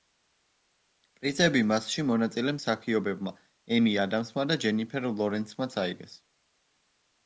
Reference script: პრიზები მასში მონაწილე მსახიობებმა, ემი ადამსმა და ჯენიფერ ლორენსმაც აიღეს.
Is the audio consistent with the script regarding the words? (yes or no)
yes